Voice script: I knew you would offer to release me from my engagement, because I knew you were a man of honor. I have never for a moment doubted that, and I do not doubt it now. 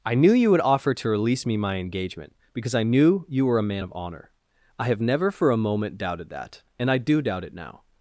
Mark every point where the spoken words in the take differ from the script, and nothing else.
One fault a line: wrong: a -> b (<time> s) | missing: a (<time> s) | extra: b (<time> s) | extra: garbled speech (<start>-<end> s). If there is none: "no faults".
missing: from (1.6 s)
missing: not (7.2 s)